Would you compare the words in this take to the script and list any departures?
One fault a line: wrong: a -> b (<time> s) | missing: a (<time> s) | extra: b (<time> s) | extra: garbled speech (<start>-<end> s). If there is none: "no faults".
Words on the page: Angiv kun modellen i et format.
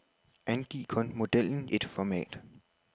missing: i (1.7 s)